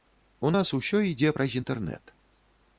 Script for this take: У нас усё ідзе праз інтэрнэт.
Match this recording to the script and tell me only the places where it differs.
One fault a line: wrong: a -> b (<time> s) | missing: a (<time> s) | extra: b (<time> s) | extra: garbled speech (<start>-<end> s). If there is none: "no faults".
no faults